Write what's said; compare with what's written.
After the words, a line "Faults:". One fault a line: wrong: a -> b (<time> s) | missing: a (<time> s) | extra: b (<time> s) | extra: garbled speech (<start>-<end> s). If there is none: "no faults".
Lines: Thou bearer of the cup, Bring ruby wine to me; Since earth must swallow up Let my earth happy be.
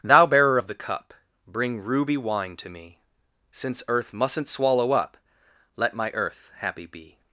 Thou bearer of the cup, Bring ruby wine to me; Since earth mustn't swallow up Let my earth happy be.
Faults:
wrong: must -> mustn't (4.1 s)